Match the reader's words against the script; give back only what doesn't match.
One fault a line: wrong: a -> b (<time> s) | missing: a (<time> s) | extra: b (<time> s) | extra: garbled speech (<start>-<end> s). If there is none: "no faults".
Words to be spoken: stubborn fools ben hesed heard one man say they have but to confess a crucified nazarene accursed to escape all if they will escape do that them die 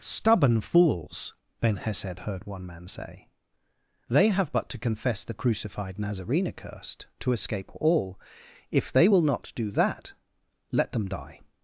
wrong: a -> the (5.2 s)
wrong: escape -> not (9.2 s)
extra: let (10.7 s)